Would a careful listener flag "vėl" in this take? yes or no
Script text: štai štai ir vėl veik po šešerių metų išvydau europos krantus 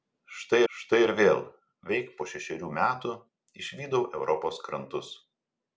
no